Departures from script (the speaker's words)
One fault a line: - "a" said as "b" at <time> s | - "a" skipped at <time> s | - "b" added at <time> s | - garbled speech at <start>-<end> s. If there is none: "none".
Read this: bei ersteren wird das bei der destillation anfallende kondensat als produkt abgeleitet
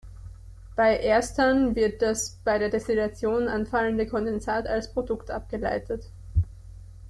none